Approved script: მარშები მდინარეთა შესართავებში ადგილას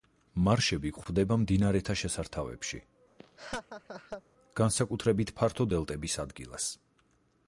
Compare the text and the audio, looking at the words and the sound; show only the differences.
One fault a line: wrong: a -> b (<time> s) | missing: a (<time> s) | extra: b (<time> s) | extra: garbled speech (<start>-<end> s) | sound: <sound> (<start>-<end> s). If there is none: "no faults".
extra: გვხვდება (1.0 s)
sound: laugh (3.2-4.2 s)
extra: განსაკუთრებით ფართო დელტების (4.6 s)